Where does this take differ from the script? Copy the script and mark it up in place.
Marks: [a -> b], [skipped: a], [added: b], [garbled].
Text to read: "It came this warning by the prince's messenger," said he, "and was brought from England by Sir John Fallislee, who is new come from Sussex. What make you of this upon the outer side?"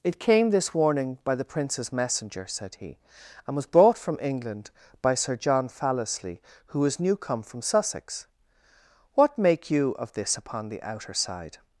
"It came this warning by the prince's messenger," said he, "and was brought from England by Sir John Fallislee, who is new come from Sussex. What make you of this upon the outer side?"